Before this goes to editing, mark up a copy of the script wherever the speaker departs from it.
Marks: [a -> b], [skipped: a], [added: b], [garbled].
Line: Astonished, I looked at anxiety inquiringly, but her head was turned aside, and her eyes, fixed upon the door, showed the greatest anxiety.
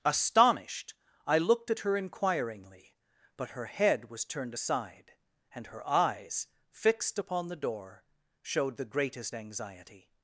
Astonished, I looked at [anxiety -> her] inquiringly, but her head was turned aside, and her eyes, fixed upon the door, showed the greatest anxiety.